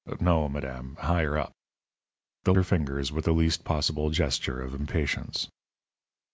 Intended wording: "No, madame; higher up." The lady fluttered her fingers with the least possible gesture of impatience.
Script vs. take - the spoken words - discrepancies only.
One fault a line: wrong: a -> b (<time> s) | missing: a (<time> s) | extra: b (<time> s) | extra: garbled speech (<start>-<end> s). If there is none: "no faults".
missing: lady fluttered (2.5 s)